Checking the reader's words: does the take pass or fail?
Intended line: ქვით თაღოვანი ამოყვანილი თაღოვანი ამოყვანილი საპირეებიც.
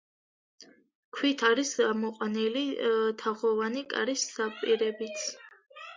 fail